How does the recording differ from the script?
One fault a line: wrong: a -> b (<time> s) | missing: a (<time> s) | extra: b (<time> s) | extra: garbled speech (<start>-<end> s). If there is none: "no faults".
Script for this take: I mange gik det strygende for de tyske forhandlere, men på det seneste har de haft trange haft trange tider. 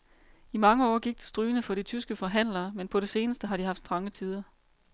extra: år (0.9 s)
missing: haft trange (4.1 s)